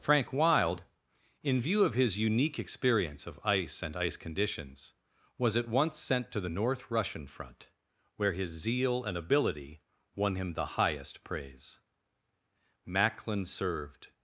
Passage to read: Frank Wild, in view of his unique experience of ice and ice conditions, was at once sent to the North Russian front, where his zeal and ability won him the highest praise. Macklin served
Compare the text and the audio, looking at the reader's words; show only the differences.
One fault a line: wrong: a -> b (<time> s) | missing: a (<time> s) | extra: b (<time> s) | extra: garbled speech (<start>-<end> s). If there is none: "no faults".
no faults